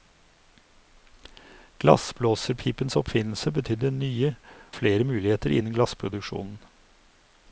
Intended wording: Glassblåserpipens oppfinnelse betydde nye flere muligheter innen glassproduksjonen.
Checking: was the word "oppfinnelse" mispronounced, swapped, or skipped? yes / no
no